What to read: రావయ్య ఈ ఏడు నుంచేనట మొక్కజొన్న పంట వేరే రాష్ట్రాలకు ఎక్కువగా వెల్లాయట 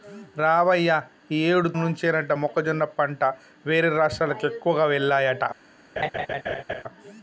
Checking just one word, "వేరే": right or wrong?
right